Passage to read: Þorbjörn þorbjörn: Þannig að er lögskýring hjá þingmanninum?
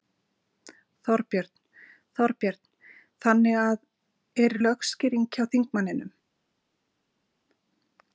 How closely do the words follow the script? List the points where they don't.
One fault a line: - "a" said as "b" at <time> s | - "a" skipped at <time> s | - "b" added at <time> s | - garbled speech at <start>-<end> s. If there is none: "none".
none